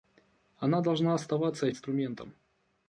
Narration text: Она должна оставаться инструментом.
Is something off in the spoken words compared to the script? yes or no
no